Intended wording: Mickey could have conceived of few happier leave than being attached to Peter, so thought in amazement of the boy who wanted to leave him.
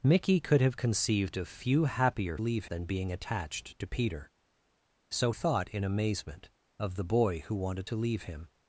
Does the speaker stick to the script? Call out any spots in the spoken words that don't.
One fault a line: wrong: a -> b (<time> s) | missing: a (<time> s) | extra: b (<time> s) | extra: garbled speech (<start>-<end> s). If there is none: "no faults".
no faults